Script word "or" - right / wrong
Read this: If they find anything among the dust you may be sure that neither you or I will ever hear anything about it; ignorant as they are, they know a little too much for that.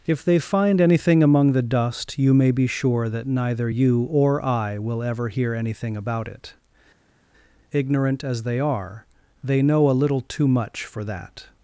right